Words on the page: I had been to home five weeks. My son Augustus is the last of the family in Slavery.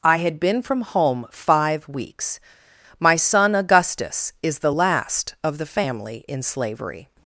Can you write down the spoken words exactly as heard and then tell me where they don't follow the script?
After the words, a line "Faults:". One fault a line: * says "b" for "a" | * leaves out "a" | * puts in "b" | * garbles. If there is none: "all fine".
I had been from home five weeks. My son Augustus is the last of the family in Slavery.
Faults:
* says "from" for "to"